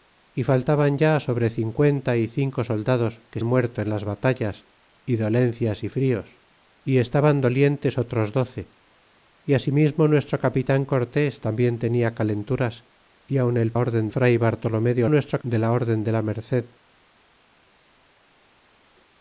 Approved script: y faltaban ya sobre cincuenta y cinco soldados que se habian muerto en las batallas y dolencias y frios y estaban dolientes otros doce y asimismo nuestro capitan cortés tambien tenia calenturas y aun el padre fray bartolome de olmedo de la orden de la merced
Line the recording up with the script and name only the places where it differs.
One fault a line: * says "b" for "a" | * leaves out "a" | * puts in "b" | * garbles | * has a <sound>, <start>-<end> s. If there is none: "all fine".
* leaves out "se habian"
* says "orden" for "padre"
* says "nuestro" for "olmedo"